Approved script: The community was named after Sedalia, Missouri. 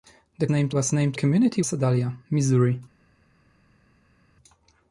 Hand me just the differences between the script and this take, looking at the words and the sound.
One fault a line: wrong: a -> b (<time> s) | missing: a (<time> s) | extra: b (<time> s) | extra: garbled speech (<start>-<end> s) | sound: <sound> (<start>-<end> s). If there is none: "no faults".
wrong: community -> named (0.5 s)
wrong: after -> community (1.1 s)